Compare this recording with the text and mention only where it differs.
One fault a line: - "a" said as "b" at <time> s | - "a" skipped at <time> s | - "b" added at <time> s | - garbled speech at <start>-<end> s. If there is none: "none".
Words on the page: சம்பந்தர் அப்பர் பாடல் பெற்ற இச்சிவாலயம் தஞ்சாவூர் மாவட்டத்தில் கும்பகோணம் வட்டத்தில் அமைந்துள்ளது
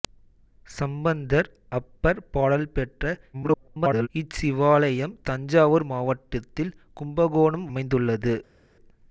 - garbled speech at 3.3-4.1 s
- "வட்டத்தில்" skipped at 7.7 s